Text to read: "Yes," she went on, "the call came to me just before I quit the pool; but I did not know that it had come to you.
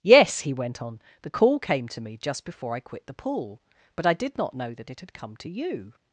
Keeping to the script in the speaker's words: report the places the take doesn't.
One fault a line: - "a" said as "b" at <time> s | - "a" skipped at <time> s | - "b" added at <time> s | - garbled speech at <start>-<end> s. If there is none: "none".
- "she" said as "he" at 0.4 s